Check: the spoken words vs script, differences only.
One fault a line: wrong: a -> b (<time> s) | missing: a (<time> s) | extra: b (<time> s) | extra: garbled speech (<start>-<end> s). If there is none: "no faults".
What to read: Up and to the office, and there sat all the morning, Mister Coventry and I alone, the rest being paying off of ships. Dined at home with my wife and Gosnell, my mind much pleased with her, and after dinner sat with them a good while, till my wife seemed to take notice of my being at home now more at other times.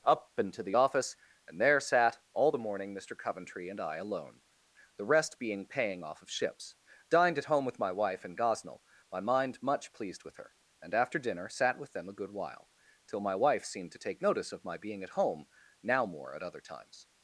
no faults